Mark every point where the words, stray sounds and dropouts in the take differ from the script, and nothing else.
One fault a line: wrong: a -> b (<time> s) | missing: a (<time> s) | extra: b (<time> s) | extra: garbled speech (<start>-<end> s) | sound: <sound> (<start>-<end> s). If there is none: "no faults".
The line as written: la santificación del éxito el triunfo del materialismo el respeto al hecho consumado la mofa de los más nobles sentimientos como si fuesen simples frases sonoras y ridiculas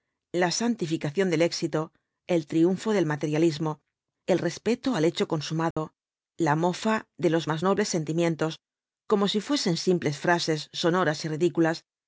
sound: dropout (5.7-5.8 s)